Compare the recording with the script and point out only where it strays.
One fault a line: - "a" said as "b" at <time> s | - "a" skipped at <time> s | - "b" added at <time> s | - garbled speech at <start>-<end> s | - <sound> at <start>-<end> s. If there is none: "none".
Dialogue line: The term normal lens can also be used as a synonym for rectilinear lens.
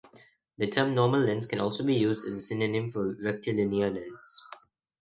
none